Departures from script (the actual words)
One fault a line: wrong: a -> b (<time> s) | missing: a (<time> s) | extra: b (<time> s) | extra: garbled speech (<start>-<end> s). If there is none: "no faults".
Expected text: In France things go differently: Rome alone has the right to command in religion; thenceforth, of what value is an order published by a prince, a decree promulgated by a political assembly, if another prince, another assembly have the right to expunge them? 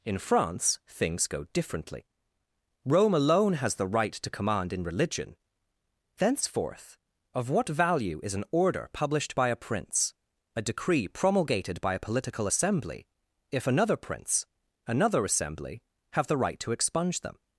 no faults